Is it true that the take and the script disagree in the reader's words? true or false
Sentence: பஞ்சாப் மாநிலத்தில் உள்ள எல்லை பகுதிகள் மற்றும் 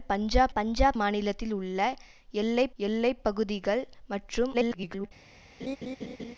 true